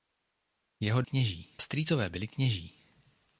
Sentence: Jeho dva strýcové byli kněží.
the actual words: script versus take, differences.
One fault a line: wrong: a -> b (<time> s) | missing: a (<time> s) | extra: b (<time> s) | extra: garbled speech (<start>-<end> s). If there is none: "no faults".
wrong: dva -> kněží (1.0 s)